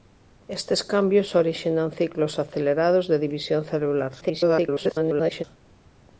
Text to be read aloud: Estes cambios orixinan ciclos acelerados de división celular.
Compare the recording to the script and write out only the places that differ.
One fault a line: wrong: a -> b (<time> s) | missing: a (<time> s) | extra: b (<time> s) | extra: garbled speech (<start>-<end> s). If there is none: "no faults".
extra: garbled speech (4.2-5.4 s)